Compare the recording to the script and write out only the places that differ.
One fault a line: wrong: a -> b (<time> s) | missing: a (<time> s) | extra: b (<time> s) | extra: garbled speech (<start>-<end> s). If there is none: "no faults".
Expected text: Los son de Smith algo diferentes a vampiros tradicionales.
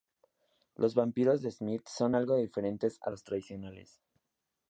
wrong: son -> vampiros (0.9 s)
extra: son (1.9 s)
wrong: vampiros -> los (3.1 s)